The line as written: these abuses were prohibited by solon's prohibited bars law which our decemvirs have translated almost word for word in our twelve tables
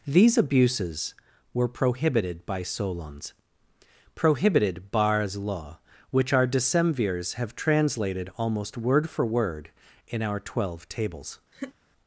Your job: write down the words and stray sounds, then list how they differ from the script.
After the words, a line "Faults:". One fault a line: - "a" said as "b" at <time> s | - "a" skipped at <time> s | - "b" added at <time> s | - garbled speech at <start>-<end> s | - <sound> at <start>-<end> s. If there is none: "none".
these abuses were prohibited by solon's prohibited bars law which our decemvirs have translated almost word for word in our twelve tables
Faults:
- laugh at 11.5-11.7 s